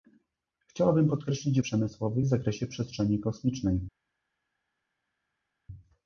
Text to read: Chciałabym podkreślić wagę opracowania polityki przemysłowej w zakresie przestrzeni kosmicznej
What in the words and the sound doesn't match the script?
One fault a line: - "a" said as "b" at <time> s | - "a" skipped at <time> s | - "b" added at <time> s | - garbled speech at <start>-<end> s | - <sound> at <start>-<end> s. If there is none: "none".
- "wagę opracowania polityki" skipped at 1.6 s